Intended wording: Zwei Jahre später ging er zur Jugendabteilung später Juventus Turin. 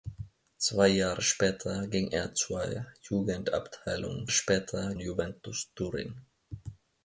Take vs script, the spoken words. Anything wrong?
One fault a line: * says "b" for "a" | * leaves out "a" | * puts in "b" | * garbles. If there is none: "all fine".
all fine